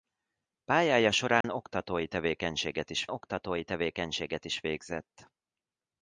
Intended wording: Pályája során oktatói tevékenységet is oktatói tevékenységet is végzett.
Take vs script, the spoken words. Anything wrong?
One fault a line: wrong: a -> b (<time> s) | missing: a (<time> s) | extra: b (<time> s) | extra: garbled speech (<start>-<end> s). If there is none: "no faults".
no faults